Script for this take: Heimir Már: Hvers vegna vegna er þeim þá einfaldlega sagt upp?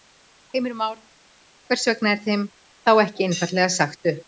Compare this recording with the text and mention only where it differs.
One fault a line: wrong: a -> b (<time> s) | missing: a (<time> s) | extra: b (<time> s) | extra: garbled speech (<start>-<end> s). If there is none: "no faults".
missing: vegna (2.1 s)
extra: ekki (3.1 s)